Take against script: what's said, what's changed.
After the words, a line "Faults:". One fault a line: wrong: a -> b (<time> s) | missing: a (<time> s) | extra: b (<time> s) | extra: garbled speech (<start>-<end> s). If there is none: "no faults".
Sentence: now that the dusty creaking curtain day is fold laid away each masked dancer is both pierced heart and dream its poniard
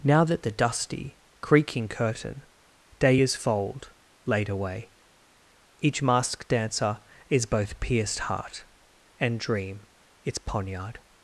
now that the dusty creaking curtain day is fold laid away each masked dancer is both pierced heart and dream its poniard
Faults:
no faults